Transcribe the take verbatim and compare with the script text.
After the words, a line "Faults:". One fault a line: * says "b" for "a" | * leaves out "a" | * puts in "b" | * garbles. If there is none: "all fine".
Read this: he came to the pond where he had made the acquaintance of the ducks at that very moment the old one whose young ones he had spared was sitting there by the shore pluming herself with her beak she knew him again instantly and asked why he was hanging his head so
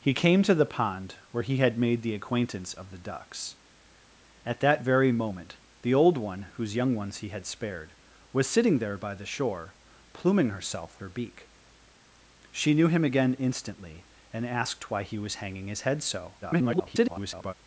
he came to the pond where he had made the acquaintance of the ducks at that very moment the old one whose young ones he had spared was sitting there by the shore pluming herself her beak she knew him again instantly and asked why he was hanging his head so [garbled]
Faults:
* leaves out "with"
* garbles